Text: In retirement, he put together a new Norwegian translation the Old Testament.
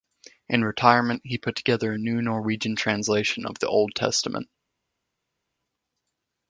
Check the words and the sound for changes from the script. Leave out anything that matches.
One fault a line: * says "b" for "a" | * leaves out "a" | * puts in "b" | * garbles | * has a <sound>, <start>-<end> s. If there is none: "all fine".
* puts in "of"